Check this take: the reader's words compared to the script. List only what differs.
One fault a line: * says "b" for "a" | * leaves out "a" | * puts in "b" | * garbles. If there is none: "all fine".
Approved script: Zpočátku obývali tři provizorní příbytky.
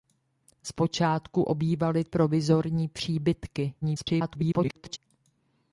* leaves out "tři"
* garbles